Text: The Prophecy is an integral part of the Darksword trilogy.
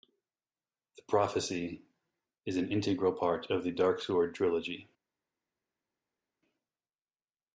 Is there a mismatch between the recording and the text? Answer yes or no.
no